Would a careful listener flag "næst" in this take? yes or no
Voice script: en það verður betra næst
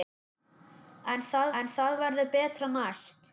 no